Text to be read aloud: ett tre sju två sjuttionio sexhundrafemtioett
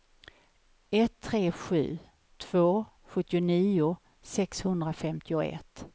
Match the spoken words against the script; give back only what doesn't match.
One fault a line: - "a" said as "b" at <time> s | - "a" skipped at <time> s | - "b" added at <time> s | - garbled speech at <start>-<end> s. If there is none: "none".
none